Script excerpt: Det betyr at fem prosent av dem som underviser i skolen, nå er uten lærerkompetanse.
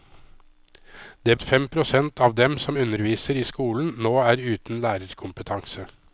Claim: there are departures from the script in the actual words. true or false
true